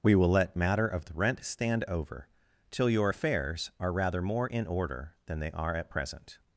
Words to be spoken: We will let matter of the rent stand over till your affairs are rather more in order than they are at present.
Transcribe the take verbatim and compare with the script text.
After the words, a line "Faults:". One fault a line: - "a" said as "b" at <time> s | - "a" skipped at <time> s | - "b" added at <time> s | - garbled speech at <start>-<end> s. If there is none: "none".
We will let matter of the rent stand over till your affairs are rather more in order than they are at present.
Faults:
none